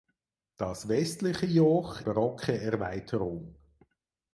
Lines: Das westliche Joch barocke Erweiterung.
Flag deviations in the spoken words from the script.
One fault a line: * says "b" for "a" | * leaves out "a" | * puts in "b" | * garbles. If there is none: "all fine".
all fine